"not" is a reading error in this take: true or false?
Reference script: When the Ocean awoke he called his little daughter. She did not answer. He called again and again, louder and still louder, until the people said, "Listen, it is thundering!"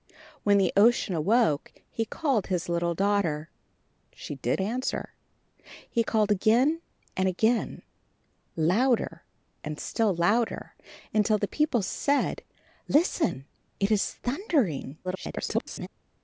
true